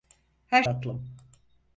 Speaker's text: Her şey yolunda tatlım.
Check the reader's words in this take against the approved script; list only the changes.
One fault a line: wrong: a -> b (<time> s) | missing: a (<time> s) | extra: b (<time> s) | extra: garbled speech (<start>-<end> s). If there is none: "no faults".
missing: şey yolunda (0.6 s)